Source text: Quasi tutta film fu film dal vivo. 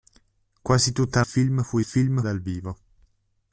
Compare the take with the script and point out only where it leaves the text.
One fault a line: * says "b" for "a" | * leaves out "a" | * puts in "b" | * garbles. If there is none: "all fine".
all fine